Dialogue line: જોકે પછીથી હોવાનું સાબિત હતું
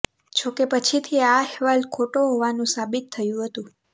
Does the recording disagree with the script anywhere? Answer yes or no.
yes